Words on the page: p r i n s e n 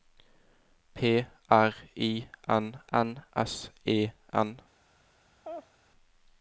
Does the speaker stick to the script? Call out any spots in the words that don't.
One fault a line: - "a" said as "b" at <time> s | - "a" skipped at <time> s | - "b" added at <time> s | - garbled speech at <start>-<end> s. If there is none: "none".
- "n" added at 2.9 s